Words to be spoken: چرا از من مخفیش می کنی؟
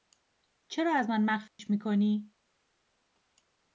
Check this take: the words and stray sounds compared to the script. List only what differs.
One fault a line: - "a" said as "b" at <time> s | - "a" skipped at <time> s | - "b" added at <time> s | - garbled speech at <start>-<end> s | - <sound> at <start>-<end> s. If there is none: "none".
- dropout at 1.5-1.6 s